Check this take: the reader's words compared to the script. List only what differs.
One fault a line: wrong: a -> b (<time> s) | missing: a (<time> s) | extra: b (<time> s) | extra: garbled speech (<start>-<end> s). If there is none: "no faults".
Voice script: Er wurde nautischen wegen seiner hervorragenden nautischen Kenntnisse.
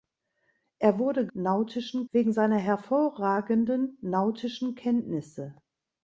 no faults